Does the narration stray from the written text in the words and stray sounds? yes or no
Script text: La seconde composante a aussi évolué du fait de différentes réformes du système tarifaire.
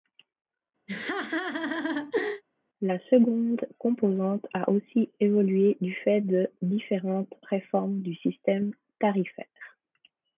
yes